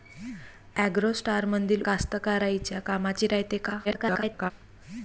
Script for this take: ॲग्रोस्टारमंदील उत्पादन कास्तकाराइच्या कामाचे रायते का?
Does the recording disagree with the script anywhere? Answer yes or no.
yes